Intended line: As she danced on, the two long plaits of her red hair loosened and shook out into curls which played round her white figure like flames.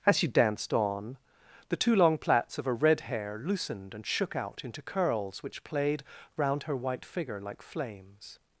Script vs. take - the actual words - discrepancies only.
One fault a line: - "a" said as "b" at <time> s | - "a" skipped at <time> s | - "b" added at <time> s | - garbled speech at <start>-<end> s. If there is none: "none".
none